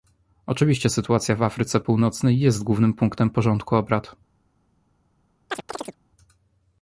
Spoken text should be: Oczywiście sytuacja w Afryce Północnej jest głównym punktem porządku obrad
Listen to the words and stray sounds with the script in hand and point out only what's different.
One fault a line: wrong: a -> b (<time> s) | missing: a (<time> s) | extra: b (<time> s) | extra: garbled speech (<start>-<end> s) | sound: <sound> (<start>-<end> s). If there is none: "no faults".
sound: chirp (5.5-6.0 s)